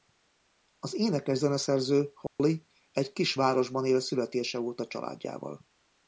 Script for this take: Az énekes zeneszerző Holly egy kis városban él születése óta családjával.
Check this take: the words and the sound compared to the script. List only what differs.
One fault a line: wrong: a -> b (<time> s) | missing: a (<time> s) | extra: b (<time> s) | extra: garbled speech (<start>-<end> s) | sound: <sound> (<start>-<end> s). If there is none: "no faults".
sound: dropout (2.3-2.4 s)